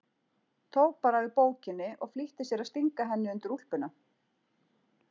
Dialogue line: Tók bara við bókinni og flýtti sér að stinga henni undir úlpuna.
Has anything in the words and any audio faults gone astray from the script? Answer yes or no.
no